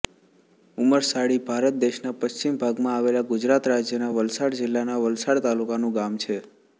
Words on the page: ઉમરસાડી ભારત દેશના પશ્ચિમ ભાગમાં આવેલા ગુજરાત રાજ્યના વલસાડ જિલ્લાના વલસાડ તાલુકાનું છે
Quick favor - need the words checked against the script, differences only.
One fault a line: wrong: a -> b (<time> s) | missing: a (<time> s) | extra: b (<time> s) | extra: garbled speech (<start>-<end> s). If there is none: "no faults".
extra: ગામ (6.0 s)